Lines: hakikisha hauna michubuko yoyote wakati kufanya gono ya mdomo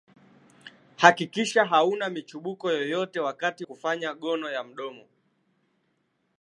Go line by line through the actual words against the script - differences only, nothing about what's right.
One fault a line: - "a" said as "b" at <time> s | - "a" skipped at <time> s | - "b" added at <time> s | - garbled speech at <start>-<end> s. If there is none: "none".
none